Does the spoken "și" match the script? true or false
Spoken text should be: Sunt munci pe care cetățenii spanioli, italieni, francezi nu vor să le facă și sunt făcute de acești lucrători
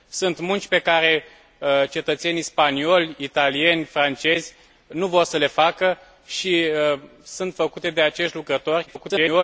true